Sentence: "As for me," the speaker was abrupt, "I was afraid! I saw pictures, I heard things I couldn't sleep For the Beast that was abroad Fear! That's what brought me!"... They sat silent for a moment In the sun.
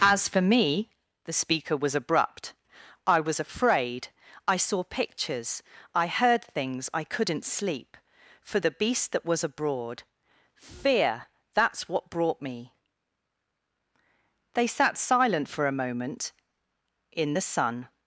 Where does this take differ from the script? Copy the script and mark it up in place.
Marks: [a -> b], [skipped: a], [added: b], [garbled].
"As for me," the speaker was abrupt, "I was afraid! I saw pictures, I heard things I couldn't sleep For the Beast that was abroad Fear! That's what brought me!"... They sat silent for a moment In the sun.